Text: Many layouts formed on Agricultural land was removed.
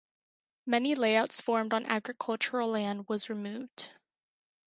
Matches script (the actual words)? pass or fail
pass